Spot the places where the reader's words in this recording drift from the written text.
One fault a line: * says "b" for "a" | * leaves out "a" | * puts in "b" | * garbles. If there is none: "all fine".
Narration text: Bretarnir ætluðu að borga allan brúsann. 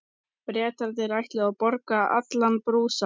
all fine